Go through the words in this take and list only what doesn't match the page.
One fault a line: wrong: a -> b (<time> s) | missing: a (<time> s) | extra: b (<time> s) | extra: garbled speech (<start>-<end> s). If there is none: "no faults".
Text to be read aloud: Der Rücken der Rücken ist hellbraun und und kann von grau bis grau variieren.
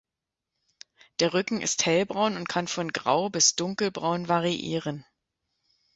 missing: der Rücken (1.6 s)
missing: und (2.5 s)
wrong: grau -> dunkelbraun (3.5 s)